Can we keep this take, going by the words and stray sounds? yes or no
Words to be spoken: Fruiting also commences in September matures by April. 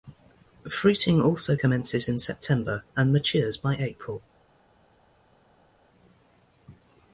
no